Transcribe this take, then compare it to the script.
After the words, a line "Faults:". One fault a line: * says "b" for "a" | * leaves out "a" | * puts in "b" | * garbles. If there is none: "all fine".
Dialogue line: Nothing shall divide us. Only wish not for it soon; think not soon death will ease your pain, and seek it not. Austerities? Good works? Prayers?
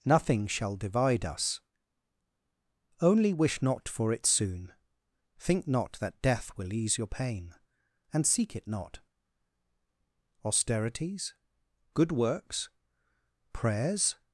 Nothing shall divide us. Only wish not for it soon; think not that death will ease your pain, and seek it not. Austerities? Good works? Prayers?
Faults:
* says "that" for "soon"